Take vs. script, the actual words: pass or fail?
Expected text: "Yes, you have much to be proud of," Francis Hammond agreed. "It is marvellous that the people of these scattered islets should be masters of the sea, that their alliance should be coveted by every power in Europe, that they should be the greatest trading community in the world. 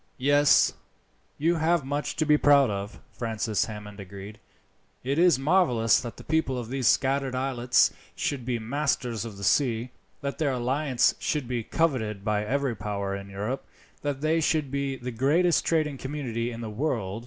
pass